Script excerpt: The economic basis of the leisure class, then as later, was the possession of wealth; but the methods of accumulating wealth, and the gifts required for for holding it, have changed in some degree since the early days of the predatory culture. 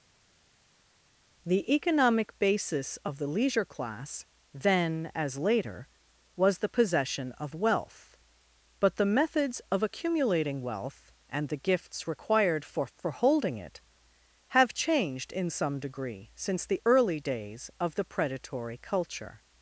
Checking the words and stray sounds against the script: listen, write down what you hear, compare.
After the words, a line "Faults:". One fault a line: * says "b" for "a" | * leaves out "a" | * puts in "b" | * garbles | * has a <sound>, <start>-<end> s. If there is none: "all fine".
The economic basis of the leisure class, then as later, was the possession of wealth; but the methods of accumulating wealth, and the gifts required for for holding it, have changed in some degree since the early days of the predatory culture.
Faults:
all fine